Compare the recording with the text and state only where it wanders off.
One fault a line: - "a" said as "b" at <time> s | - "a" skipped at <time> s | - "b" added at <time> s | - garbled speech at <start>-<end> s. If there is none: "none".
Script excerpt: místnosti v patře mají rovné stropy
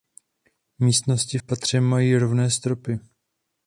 none